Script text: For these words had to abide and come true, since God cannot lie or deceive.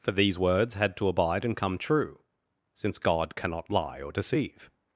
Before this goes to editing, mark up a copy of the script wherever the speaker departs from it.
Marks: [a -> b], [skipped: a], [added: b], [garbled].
For these words had to abide and come true, since God cannot lie or deceive.